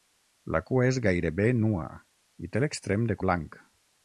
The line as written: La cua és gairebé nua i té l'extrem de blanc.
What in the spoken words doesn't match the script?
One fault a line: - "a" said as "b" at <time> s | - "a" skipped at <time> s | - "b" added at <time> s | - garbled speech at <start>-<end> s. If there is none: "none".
none